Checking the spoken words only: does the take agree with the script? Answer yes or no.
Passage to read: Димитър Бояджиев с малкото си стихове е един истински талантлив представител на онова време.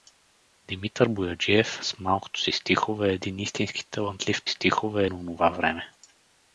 no